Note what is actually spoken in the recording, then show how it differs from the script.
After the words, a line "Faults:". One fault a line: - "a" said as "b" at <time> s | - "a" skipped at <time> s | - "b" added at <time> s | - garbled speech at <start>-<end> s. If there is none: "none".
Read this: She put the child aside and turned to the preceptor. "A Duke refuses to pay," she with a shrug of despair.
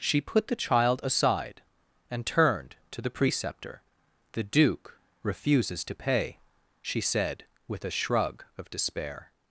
She put the child aside and turned to the preceptor. "The Duke refuses to pay," she said with a shrug of despair.
Faults:
- "A" said as "The" at 4.3 s
- "said" added at 7.0 s